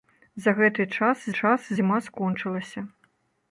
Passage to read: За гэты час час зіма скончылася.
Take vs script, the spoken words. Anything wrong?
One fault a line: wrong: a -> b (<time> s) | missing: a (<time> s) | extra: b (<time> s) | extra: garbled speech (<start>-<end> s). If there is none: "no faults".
no faults